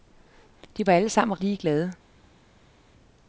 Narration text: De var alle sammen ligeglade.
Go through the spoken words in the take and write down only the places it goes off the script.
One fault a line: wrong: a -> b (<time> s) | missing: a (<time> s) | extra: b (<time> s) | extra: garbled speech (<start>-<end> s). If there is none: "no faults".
no faults